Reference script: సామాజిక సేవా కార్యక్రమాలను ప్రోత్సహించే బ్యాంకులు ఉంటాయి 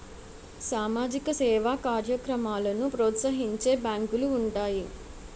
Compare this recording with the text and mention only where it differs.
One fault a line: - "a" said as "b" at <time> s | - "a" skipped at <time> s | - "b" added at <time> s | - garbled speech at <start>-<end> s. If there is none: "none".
none